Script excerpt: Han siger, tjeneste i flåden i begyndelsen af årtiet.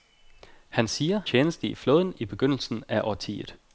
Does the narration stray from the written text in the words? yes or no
no